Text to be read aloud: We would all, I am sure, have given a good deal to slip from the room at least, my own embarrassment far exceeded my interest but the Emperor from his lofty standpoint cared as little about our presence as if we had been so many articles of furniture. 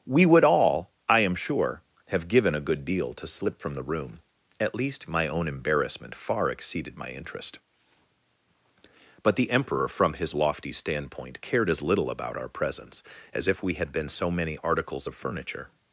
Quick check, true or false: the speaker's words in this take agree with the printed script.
true